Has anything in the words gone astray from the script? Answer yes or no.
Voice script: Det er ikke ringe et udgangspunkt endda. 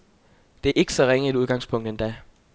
yes